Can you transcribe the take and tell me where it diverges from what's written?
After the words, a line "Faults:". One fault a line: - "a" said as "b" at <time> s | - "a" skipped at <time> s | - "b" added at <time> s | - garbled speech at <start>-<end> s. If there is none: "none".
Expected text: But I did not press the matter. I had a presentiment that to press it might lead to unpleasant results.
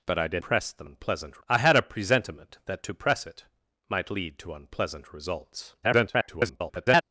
But I did press the unpleasant. I had a presentiment that to press it might lead to unpleasant results. [garbled]
Faults:
- "not" skipped at 0.4 s
- "matter" said as "unpleasant" at 0.8 s
- garbled speech at 5.8-7.0 s